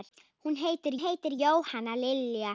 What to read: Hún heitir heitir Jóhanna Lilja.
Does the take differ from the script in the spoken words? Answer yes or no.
no